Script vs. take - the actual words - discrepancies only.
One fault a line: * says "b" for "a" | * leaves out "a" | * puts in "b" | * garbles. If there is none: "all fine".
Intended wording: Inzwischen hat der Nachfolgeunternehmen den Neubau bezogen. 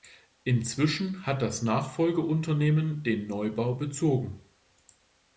* says "das" for "der"